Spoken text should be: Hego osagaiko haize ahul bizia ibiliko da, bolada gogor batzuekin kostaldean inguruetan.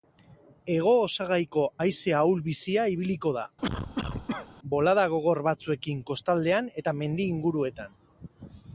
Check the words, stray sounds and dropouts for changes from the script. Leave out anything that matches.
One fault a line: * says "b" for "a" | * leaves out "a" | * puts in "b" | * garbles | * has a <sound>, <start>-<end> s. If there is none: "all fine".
* has a cough, 3.6-4.5 s
* puts in "eta mendi"